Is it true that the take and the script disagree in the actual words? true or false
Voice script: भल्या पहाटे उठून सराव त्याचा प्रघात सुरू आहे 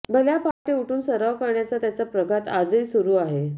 true